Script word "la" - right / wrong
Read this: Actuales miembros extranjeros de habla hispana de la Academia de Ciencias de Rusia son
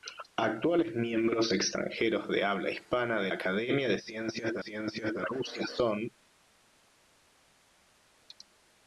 wrong